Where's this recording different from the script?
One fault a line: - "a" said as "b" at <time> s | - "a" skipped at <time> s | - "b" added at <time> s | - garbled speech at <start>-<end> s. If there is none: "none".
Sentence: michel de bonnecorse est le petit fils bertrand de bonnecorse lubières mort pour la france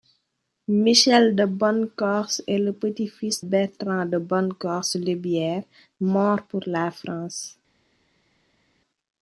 none